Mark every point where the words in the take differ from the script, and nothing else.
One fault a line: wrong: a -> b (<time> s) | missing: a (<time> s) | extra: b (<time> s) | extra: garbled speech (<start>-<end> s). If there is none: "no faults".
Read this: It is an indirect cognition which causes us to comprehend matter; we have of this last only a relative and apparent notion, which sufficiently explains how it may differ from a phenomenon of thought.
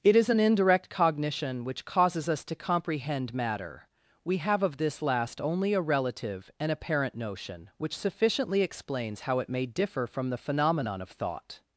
wrong: a -> the (10.3 s)